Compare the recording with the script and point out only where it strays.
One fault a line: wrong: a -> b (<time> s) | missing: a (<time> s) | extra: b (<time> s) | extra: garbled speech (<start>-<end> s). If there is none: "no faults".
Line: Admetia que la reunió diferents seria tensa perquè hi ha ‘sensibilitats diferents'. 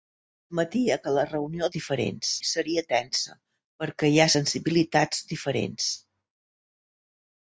no faults